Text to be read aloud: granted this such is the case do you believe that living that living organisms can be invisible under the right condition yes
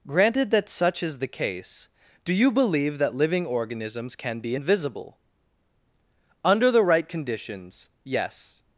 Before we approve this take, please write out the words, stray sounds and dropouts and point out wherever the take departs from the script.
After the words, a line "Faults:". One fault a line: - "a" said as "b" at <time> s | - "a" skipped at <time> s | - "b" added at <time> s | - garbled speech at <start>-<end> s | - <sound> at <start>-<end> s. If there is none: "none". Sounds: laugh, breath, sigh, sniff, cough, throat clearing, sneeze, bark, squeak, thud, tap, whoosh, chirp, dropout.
granted that such is the case do you believe that living organisms can be invisible under the right conditions yes
Faults:
- "this" said as "that" at 0.5 s
- "that living" skipped at 3.5 s
- "condition" said as "conditions" at 7.1 s